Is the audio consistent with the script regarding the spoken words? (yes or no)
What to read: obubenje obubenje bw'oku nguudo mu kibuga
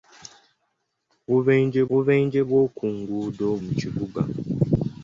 yes